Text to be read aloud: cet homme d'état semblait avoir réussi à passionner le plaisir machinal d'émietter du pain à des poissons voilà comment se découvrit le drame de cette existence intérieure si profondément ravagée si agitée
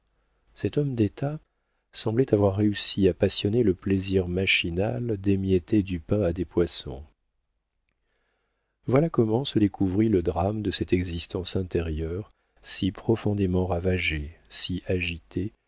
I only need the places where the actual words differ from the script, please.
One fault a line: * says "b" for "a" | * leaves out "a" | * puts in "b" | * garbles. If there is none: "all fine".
all fine